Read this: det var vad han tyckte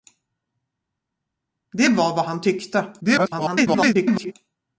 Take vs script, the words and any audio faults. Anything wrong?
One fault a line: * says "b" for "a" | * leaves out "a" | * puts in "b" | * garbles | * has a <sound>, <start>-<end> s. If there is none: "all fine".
* garbles